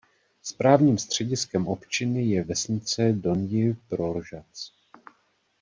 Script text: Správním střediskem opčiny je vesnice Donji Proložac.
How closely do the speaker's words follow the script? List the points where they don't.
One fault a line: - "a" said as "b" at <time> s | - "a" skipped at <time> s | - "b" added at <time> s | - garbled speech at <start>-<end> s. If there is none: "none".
none